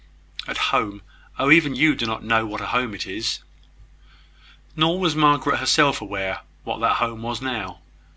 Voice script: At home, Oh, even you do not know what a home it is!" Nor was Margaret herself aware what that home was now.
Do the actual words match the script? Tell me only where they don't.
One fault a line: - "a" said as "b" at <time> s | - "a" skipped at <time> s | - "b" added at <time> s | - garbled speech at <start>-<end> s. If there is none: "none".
none